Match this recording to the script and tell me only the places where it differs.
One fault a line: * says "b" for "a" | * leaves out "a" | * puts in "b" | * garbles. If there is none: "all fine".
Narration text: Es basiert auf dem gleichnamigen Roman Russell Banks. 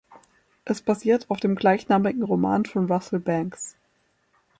* puts in "von"